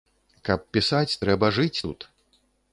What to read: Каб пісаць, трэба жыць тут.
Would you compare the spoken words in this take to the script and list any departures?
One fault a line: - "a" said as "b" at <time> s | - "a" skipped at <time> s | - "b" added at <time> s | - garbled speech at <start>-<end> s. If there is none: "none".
none